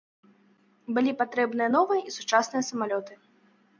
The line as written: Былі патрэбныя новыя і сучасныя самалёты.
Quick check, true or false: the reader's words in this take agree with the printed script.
true